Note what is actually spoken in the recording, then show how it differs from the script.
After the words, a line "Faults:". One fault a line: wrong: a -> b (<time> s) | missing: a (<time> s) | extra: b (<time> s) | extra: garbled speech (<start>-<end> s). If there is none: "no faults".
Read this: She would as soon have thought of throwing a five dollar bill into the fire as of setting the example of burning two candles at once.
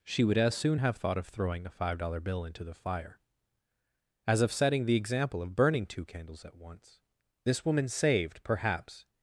She would as soon have thought of throwing a five dollar bill into the fire as of setting the example of burning two candles at once. This woman saved, perhaps
Faults:
extra: This woman saved perhaps (7.4 s)